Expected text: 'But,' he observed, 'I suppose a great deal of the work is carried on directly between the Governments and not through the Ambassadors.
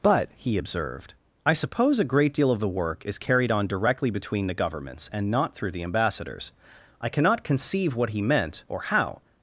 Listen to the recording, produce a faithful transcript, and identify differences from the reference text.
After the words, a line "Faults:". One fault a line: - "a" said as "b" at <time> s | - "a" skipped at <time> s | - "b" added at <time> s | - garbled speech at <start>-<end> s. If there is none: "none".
'But,' he observed, 'I suppose a great deal of the work is carried on directly between the Governments and not through the Ambassadors. I cannot conceive what he meant or how
Faults:
- "I cannot conceive what he meant or how" added at 7.0 s